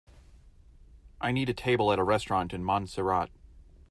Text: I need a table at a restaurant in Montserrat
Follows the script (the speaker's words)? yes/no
yes